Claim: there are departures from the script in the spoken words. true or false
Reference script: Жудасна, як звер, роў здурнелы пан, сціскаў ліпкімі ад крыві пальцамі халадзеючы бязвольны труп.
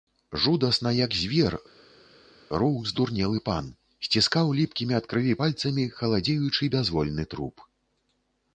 false